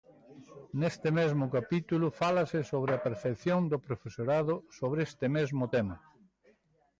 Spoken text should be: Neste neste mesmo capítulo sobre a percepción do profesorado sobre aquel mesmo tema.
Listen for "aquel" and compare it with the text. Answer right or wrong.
wrong